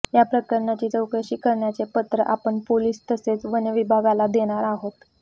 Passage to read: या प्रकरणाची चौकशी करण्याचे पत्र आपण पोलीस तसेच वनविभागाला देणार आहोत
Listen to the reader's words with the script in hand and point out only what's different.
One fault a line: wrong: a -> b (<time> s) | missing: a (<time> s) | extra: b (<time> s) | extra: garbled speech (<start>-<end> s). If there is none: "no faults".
no faults